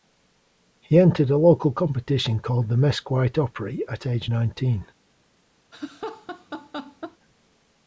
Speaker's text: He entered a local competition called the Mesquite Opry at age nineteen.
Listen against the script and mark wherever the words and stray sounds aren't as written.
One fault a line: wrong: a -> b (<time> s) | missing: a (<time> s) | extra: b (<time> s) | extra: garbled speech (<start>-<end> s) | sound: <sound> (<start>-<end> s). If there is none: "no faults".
sound: laugh (5.7-7.2 s)